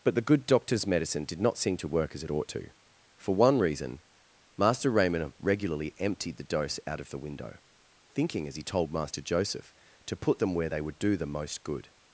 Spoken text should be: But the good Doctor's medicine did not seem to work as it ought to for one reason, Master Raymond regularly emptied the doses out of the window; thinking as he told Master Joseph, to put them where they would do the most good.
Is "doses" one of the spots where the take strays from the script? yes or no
yes